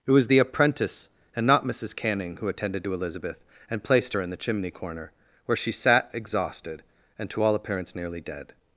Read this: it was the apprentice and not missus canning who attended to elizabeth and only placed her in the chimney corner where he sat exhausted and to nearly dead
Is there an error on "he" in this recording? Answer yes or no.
yes